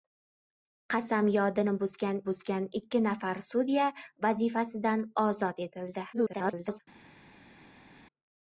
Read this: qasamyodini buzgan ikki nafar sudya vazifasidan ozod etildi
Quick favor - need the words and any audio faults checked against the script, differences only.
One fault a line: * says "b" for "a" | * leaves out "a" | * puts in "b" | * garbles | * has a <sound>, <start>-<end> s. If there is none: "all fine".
* puts in "buzgan"
* garbles